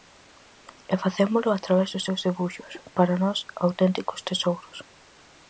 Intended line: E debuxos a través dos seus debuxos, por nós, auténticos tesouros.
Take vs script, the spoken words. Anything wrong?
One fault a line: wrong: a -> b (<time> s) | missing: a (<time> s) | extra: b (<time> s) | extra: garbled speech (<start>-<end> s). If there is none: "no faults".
wrong: debuxos -> facémolo (1.0 s)
wrong: por -> para (3.0 s)